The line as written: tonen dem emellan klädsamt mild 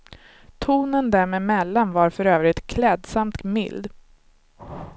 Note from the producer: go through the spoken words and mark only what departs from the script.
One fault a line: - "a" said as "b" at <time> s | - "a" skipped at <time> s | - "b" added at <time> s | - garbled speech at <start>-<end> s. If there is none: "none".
- "var för övrigt" added at 1.9 s